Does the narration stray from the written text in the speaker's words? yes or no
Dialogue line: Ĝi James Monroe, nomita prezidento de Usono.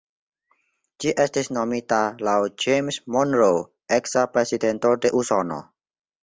yes